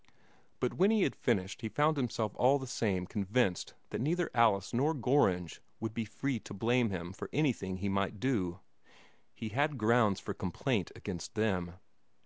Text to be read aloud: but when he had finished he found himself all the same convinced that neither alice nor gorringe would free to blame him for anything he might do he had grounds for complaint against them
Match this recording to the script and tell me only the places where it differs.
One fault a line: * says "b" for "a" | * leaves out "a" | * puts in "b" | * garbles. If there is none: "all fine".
* puts in "be"